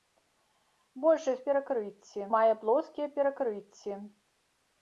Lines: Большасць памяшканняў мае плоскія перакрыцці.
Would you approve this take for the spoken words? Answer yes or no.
no